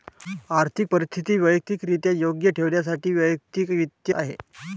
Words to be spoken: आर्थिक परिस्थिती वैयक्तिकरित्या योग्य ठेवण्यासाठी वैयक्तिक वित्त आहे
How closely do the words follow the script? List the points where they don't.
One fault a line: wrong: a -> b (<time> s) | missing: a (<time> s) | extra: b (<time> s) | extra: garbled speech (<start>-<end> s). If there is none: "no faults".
no faults